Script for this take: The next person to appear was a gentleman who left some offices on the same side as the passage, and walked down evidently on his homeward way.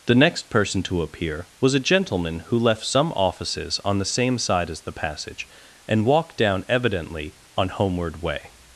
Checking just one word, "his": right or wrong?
wrong